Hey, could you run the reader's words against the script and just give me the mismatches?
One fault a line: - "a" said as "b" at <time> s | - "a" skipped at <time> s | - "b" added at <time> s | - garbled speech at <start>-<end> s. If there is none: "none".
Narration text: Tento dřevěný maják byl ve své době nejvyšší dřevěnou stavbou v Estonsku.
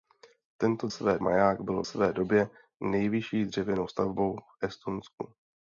- "dřevěný" said as "své" at 0.9 s
- "ve" skipped at 1.8 s